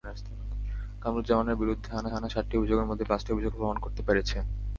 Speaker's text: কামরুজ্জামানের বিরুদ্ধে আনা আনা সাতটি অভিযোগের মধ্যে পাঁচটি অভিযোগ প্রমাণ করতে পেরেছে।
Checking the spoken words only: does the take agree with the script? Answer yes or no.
yes